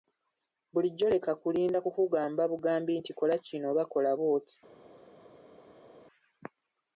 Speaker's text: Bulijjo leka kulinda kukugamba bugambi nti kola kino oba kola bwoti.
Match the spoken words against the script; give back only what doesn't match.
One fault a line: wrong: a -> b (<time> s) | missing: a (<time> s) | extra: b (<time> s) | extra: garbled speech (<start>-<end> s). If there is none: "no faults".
no faults